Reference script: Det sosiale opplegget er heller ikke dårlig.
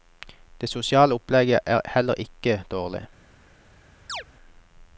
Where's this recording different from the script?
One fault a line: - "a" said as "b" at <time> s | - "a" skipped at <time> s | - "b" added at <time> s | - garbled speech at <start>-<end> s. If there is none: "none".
none